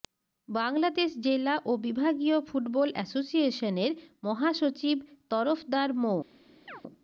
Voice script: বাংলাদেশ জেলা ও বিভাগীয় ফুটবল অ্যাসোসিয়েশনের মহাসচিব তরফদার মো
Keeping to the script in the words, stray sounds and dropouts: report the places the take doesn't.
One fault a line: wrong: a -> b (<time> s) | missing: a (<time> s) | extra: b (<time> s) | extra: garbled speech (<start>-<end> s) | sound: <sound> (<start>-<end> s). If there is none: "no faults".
sound: chirp (6.7-6.8 s)